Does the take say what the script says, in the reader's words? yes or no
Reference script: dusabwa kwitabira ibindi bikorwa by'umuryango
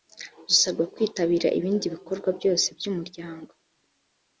no